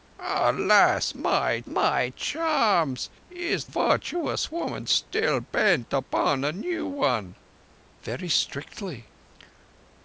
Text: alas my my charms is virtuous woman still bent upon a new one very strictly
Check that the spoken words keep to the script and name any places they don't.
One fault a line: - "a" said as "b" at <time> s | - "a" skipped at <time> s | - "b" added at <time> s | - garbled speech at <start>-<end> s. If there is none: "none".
none